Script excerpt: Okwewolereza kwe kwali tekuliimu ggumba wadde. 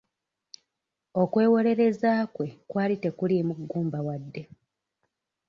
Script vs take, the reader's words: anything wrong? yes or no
no